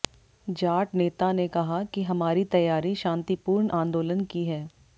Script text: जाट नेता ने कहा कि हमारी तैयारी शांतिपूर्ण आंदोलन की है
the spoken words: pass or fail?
pass